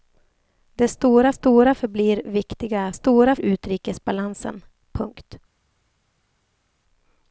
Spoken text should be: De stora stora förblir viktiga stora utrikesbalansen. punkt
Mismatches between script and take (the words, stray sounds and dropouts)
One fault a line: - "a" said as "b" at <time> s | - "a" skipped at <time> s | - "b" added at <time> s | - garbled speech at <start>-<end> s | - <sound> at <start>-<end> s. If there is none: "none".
none